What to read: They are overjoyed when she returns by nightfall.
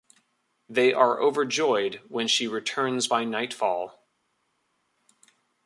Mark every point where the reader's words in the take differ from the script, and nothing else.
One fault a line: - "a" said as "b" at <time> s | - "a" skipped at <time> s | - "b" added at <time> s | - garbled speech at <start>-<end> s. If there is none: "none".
none